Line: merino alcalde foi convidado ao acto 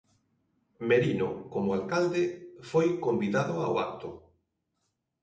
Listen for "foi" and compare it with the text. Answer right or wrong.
right